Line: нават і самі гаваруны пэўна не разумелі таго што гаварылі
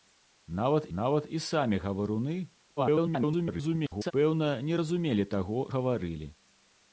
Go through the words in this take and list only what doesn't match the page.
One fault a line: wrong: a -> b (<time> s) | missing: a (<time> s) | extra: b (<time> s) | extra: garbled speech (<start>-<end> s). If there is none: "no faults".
extra: нават (1.0 s)
extra: garbled speech (2.8-4.1 s)
missing: што (5.6 s)